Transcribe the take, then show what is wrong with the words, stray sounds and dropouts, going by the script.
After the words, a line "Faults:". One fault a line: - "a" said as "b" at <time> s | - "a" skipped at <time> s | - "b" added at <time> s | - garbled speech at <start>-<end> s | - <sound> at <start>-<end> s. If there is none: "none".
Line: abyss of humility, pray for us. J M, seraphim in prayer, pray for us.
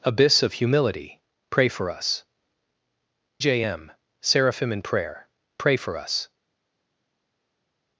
abyss of humility, pray for us. J M, seraphim in prayer, pray for us.
Faults:
none